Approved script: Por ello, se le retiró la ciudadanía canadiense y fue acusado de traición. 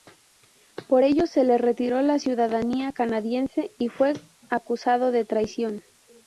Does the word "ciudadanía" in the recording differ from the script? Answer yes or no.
no